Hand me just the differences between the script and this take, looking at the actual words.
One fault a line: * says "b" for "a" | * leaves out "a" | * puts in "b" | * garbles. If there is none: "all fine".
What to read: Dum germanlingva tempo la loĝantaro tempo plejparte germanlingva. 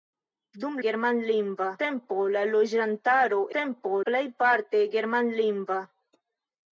all fine